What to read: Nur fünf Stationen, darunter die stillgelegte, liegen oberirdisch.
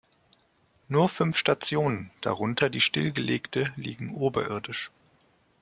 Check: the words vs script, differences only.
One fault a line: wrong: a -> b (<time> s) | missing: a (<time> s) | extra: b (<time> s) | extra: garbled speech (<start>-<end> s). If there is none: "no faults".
no faults